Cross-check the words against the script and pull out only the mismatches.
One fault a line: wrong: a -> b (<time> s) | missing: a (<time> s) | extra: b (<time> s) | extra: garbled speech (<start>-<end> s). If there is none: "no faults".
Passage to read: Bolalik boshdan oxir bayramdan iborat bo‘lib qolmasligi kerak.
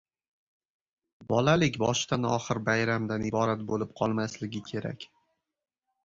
no faults